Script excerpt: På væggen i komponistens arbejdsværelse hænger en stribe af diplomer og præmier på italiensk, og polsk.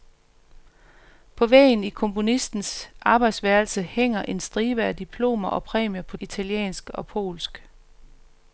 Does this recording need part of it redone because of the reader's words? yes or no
no